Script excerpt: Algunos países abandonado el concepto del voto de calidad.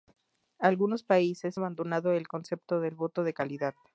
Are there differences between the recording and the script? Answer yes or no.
no